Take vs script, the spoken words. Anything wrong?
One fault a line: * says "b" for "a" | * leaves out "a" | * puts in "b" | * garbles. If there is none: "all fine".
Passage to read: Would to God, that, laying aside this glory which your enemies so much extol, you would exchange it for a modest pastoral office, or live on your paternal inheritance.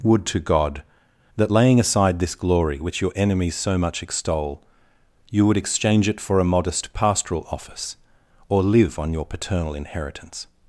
all fine